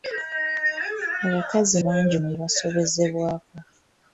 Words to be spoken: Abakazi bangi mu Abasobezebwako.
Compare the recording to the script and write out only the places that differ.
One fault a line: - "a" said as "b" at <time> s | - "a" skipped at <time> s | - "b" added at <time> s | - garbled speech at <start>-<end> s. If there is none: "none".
none